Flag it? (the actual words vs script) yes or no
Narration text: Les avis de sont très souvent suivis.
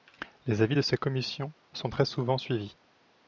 yes